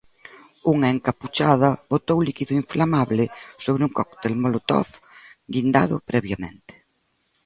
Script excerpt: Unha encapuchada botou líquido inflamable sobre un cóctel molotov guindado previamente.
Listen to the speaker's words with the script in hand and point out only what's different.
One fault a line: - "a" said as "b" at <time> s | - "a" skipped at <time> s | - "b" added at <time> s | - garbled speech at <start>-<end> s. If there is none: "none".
none